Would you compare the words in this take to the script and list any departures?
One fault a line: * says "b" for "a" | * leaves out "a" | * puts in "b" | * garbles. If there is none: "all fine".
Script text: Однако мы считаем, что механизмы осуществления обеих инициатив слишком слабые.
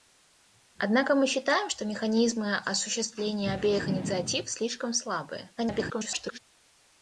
* garbles